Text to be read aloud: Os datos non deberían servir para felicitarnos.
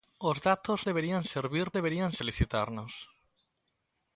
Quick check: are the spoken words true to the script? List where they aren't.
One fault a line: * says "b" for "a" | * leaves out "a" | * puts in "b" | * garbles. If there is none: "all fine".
* leaves out "non"
* says "deberían" for "para"